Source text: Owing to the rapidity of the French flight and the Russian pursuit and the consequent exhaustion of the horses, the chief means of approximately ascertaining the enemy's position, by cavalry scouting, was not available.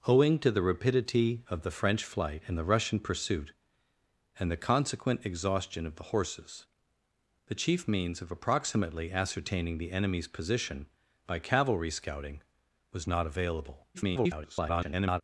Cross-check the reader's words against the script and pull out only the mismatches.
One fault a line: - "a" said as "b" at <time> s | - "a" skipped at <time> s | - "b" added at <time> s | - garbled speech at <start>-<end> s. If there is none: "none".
- garbled speech at 13.9-15.2 s